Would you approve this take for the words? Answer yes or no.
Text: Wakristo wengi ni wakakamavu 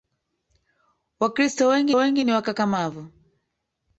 no